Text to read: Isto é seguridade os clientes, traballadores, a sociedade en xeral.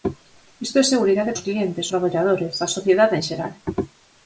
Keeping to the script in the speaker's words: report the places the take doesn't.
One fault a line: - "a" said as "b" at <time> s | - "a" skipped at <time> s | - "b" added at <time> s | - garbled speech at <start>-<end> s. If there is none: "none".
none